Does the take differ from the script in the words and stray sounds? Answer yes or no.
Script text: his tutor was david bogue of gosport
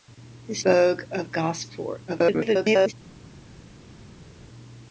yes